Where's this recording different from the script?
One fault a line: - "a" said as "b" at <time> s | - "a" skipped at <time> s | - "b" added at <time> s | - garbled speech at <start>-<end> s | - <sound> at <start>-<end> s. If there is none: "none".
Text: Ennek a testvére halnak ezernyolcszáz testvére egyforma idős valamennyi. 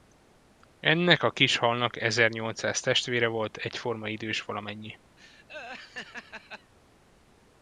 - "testvére" said as "kis" at 1.3 s
- "volt" added at 3.3 s
- laugh at 5.2-6.7 s